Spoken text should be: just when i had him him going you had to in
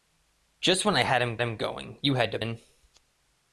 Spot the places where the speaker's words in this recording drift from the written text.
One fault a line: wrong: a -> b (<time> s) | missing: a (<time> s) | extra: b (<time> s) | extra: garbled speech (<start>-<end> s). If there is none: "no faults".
no faults